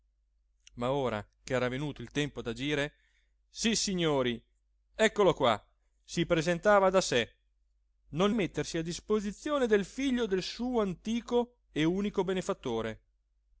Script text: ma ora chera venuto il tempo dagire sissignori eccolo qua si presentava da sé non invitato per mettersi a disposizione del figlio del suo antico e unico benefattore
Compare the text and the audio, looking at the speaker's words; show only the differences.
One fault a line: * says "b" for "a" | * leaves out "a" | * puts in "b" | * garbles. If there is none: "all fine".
* leaves out "invitato per"